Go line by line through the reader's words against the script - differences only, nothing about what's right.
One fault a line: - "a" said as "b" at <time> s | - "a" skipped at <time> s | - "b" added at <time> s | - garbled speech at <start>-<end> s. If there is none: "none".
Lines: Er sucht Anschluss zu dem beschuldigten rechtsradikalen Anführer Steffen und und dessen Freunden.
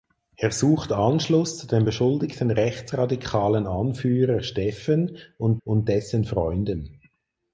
none